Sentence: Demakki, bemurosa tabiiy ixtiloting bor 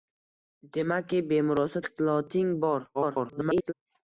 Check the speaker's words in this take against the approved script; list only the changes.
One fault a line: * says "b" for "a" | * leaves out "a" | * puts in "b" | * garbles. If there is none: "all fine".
* leaves out "tabiiy"
* garbles